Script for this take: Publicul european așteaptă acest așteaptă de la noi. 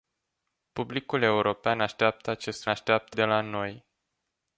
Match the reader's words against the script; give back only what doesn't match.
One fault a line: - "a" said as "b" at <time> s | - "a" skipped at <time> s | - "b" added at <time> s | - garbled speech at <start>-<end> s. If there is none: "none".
none